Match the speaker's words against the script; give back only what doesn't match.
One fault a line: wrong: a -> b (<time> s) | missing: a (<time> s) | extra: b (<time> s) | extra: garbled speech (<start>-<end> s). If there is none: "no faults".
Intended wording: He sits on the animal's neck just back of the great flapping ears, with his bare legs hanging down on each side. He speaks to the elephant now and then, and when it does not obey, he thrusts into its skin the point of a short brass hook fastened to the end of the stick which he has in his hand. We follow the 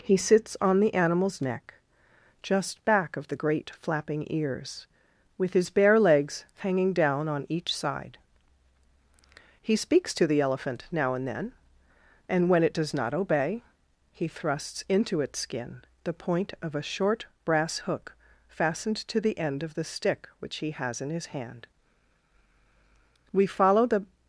no faults